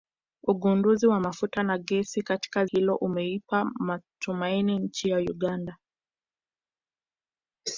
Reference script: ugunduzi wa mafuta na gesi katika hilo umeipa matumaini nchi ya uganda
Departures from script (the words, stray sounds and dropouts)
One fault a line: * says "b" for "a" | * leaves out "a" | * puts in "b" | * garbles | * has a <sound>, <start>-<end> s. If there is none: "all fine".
all fine